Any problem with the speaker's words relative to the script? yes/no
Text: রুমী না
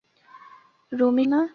no